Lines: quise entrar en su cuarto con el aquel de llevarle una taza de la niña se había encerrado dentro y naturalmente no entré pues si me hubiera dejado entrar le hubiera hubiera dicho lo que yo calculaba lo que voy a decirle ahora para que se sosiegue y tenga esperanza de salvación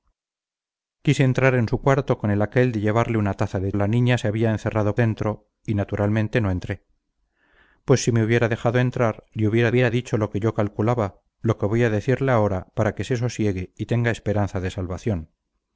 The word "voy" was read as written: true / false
true